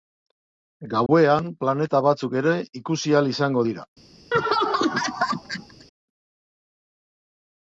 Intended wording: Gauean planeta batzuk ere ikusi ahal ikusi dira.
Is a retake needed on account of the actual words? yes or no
yes